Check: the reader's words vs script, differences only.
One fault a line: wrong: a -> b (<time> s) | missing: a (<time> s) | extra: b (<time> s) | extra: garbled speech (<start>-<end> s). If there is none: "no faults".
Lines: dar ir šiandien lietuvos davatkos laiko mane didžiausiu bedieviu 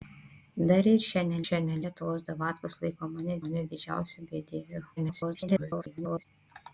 extra: šiandien (1.4 s)
extra: mane (3.4 s)
extra: garbled speech (5.0-6.2 s)